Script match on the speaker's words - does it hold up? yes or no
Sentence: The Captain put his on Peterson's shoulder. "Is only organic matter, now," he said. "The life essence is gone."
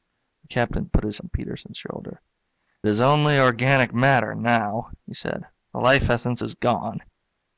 yes